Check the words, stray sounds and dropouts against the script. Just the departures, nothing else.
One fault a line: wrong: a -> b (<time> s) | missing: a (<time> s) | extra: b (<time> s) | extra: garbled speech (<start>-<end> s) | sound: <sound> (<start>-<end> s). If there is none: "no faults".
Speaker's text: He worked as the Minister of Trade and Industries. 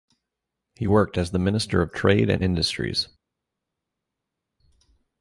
no faults